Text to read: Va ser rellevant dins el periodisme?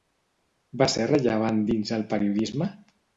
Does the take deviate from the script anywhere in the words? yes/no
no